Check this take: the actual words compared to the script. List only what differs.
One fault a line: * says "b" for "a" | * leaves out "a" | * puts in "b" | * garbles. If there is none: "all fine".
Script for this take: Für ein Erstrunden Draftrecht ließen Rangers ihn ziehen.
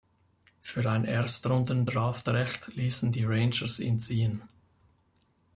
* puts in "die"